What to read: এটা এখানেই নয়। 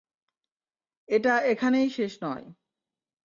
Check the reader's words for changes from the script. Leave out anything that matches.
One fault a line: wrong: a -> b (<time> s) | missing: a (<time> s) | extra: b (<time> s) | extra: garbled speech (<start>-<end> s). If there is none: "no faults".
extra: শেষ (1.9 s)